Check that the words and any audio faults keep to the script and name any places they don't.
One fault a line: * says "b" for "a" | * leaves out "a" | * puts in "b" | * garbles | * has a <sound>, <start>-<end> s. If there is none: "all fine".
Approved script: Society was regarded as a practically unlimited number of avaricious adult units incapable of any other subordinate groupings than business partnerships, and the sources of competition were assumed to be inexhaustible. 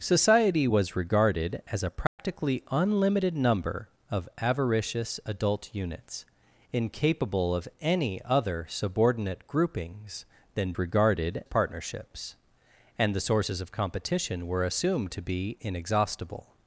* has a dropout, 2.1-2.2 s
* says "regarded" for "business"